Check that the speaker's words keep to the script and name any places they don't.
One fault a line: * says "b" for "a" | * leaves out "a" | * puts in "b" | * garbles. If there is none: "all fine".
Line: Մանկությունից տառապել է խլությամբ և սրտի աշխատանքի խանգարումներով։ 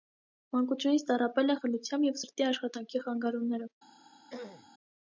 all fine